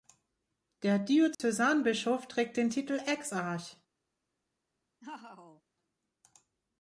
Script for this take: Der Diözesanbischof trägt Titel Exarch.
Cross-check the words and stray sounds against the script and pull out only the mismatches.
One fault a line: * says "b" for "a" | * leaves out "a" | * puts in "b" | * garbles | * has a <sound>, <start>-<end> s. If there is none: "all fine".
* has a dropout, 1.3-1.4 s
* puts in "den"
* has a laugh, 5.0-5.6 s